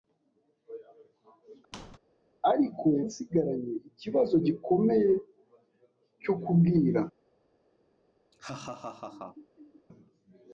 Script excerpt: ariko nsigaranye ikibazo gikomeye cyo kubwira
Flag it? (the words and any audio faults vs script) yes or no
yes